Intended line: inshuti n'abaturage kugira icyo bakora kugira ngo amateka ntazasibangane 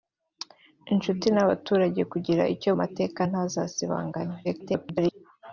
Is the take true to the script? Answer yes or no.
no